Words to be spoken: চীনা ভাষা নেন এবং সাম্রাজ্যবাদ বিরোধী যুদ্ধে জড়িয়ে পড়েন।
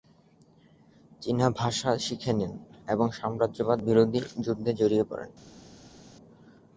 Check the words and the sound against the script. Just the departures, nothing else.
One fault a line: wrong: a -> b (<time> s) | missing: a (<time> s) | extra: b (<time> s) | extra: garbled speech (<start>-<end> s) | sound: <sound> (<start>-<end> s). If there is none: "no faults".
extra: শিখে (2.0 s)